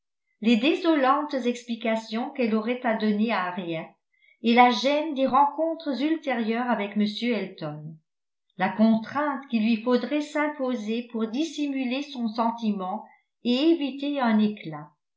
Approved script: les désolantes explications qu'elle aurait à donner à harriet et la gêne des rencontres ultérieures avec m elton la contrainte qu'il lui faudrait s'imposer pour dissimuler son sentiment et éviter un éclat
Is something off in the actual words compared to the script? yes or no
no